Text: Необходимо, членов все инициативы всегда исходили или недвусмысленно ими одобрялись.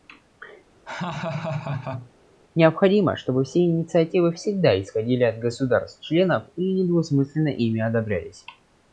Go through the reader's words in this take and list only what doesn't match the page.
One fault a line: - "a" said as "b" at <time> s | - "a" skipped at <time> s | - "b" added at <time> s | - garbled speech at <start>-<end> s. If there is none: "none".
- "членов" said as "чтобы" at 3.2 s
- "от государств членов" added at 5.2 s